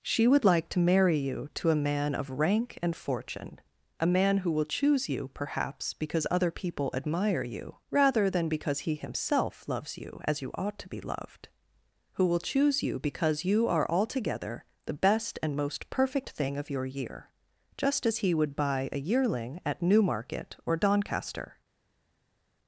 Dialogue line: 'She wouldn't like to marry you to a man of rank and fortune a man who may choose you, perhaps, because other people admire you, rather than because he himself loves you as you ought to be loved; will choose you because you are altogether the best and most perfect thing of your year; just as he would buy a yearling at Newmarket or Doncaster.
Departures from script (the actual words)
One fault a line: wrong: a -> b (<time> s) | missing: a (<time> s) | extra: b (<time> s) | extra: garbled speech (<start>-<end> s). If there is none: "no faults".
wrong: wouldn't -> would (0.3 s)
wrong: may -> will (4.5 s)
extra: who (12.1 s)